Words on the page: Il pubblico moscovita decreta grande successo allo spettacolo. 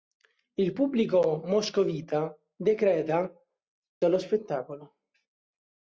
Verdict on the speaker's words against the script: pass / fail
fail